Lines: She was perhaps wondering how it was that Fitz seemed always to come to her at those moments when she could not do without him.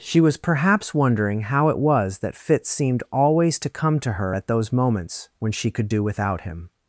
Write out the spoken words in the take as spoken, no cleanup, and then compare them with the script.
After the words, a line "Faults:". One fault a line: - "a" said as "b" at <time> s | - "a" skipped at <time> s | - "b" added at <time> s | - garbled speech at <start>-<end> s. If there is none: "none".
She was perhaps wondering how it was that Fitz seemed always to come to her at those moments when she could do without him.
Faults:
- "not" skipped at 5.9 s